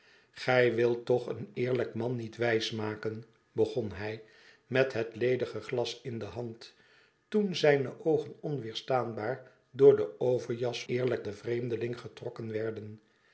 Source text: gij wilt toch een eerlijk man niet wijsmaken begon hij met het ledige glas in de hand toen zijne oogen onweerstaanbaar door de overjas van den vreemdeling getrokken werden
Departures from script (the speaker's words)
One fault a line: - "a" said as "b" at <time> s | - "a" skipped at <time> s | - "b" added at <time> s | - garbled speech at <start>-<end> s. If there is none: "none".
- "van" said as "eerlijk" at 10.9 s